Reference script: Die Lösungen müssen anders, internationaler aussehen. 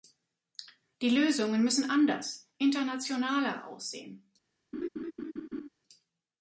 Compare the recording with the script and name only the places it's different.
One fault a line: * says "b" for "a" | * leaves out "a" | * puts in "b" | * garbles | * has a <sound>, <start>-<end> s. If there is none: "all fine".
* has a laugh, 4.7-5.7 s